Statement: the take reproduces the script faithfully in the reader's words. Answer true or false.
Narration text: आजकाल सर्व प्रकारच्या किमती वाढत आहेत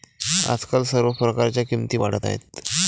true